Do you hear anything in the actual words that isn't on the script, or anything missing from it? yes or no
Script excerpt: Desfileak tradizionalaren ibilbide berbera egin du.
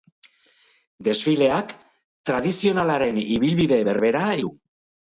yes